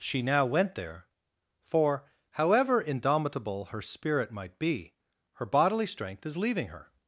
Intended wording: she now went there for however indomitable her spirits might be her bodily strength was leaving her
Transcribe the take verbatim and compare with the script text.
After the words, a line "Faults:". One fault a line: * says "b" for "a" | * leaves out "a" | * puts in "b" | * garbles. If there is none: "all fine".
she now went there for however indomitable her spirit might be her bodily strength is leaving her
Faults:
* says "spirit" for "spirits"
* says "is" for "was"